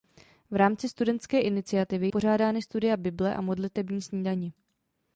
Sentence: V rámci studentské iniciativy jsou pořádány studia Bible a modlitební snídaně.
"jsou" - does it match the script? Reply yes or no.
no